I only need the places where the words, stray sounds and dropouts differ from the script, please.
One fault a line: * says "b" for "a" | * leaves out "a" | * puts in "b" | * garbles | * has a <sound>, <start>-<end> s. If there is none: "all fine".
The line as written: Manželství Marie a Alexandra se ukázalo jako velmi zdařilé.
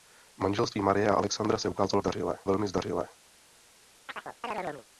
* says "zdařilé" for "jako"
* has a chirp, 4.1-4.9 s